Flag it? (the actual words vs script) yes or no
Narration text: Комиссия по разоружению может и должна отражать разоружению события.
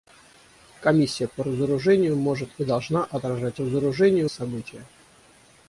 no